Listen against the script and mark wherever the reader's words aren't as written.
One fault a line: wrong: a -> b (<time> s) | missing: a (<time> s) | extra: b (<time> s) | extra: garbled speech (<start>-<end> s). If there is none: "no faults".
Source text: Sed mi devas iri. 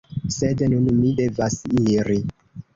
extra: nun (0.8 s)